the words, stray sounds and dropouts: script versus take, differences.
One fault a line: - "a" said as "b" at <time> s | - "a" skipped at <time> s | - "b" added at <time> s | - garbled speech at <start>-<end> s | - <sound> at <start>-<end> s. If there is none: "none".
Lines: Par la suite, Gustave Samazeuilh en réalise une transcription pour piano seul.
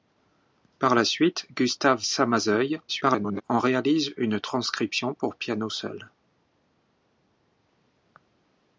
- garbled speech at 2.9-3.4 s